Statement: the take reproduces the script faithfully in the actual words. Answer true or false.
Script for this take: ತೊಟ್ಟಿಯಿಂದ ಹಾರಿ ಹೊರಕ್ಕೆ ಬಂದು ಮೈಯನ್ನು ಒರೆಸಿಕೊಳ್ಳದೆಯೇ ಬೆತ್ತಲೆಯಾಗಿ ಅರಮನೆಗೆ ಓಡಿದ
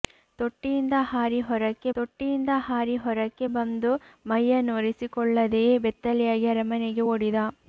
false